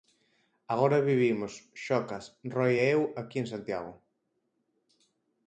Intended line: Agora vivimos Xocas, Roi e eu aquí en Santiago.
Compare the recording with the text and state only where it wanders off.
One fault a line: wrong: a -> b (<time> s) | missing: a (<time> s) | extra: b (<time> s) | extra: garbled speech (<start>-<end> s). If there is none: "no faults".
no faults